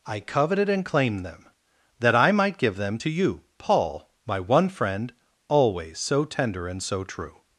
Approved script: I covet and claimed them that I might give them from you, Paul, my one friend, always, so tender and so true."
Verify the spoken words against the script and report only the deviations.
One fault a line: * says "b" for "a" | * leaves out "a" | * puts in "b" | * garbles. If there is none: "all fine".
* says "coveted" for "covet"
* says "to" for "from"